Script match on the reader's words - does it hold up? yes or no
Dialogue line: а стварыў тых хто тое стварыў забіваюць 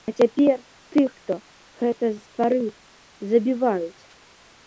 no